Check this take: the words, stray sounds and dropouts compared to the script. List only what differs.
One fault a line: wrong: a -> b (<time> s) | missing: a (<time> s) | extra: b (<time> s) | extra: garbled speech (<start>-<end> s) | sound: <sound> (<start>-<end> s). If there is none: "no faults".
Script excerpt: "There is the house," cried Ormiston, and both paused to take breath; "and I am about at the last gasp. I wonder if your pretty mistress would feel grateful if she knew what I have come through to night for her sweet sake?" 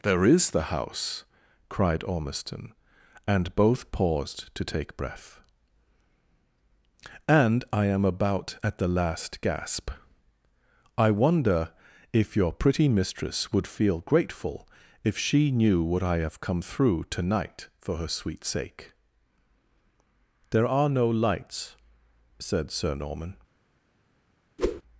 extra: There are no lights said Sir Norman (20.5 s)
sound: whoosh (24.6-24.8 s)